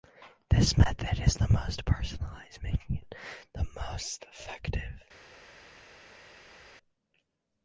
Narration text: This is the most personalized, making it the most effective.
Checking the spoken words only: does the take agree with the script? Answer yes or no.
no